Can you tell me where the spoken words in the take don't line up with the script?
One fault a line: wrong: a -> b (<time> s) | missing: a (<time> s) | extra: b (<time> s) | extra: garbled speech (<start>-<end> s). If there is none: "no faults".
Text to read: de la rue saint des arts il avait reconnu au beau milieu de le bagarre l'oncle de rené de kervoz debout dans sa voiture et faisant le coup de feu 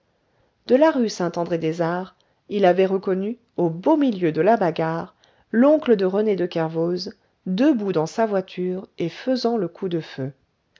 extra: andré (1.4 s)
wrong: le -> la (4.4 s)